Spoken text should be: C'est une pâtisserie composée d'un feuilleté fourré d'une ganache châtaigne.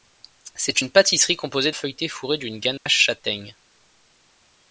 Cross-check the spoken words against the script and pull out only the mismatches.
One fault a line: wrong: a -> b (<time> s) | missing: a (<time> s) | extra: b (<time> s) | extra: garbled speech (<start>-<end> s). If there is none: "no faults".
missing: d'un (1.7 s)